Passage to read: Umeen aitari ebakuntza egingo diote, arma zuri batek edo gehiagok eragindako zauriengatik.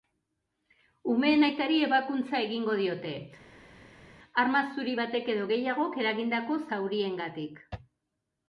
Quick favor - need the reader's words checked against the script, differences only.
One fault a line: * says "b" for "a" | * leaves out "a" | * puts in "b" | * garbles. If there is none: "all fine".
all fine